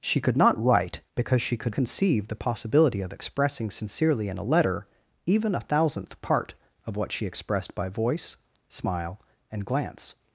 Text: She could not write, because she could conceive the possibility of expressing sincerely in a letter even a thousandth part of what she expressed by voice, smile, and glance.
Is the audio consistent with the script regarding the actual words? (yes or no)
yes